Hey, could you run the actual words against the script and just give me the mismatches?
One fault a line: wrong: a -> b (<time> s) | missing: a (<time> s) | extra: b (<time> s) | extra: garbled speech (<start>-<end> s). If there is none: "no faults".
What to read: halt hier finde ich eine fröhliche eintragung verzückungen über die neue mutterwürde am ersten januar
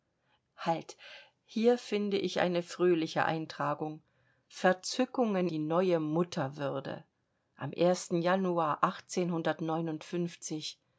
missing: über (5.5 s)